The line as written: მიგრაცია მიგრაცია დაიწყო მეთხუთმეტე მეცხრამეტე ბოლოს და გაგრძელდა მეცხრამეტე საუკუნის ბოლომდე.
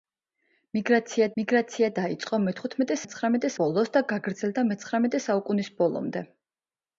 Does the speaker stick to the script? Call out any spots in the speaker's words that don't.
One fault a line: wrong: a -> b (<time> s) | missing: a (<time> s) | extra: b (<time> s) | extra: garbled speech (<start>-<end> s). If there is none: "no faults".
no faults